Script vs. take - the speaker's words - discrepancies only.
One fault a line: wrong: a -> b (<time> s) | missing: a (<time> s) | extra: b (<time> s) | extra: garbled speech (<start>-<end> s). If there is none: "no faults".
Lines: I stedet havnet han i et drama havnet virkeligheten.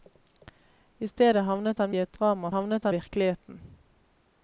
no faults